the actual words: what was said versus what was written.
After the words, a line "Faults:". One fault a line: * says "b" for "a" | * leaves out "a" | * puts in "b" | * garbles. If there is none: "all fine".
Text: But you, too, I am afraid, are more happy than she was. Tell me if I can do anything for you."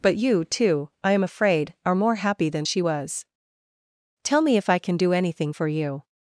But you, too, I am afraid, are more happy than she was. Tell me if I can do anything for you."
Faults:
all fine